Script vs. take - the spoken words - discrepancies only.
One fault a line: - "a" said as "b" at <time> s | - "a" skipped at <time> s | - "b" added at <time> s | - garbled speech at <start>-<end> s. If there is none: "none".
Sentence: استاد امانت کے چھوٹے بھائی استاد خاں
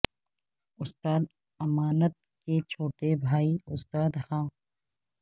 none